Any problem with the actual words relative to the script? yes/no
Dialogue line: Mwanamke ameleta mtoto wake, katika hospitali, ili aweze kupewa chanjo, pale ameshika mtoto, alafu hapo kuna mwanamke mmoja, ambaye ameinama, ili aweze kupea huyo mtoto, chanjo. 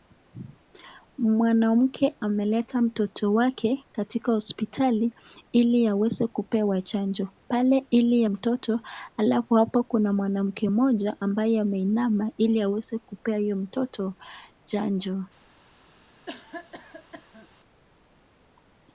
yes